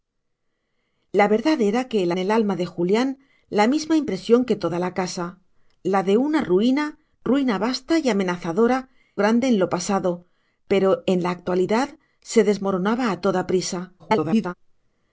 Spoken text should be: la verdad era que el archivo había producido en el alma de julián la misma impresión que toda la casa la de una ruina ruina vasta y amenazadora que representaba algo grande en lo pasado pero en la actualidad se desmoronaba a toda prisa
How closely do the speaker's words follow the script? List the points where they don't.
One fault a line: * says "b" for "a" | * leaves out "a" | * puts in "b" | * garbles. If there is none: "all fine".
* leaves out "archivo había producido"
* leaves out "que representaba algo"
* garbles